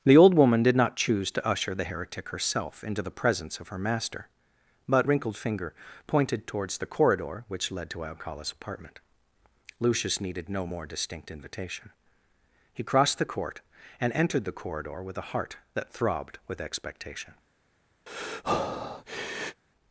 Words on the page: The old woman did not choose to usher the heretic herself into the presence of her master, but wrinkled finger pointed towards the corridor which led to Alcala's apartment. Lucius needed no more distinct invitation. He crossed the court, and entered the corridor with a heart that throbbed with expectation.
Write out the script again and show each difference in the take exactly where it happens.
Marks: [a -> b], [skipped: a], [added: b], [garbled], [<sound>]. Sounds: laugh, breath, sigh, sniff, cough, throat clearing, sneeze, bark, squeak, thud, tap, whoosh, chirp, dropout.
The old woman did not choose to usher the heretic herself into the presence of her master, but wrinkled finger pointed towards the corridor which led to Alcala's apartment. Lucius needed no more distinct invitation. He crossed the court, and entered the corridor with a heart that throbbed with expectation. [breath]